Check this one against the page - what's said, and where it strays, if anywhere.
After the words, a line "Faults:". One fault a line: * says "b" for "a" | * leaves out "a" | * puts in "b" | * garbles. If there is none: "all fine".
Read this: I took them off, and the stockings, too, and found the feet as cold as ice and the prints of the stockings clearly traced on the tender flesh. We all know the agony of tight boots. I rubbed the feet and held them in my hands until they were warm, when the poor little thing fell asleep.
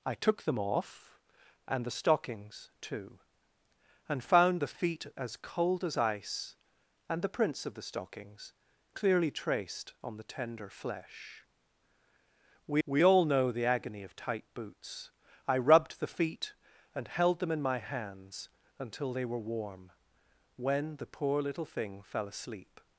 I took them off, and the stockings, too, and found the feet as cold as ice and the prints of the stockings clearly traced on the tender flesh. We we all know the agony of tight boots. I rubbed the feet and held them in my hands until they were warm, when the poor little thing fell asleep.
Faults:
* puts in "we"